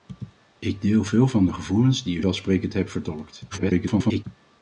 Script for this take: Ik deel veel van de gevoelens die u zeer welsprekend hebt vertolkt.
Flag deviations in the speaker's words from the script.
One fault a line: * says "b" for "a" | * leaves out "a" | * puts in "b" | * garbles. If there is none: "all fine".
* leaves out "zeer"
* garbles